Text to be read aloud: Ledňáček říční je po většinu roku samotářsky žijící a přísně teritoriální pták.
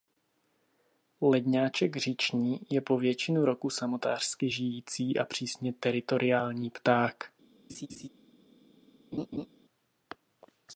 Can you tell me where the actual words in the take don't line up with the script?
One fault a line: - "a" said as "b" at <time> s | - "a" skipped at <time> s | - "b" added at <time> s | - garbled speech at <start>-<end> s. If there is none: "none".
none